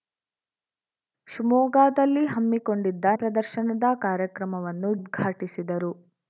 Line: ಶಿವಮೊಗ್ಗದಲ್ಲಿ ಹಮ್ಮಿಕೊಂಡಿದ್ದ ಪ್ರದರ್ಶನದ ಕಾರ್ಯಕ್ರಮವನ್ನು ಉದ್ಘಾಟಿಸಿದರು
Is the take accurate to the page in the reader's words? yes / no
yes